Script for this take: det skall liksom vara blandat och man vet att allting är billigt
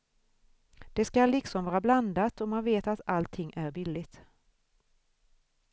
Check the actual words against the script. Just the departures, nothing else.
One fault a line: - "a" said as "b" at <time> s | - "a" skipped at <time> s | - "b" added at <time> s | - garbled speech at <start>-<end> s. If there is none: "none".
none